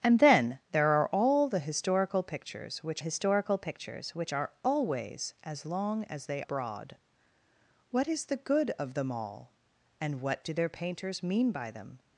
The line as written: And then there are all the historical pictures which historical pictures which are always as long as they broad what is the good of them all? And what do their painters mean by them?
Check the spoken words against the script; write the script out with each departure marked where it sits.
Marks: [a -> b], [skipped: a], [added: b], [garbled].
And then there are all the historical pictures which historical pictures which are always as long as they broad what is the good of them all? And what do their painters mean by them?